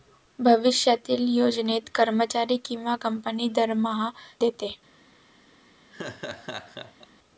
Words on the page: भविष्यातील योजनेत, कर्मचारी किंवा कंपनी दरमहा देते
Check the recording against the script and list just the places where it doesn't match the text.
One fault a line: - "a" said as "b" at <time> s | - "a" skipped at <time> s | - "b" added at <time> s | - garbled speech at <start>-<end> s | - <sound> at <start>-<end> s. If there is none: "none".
- laugh at 5.9-7.1 s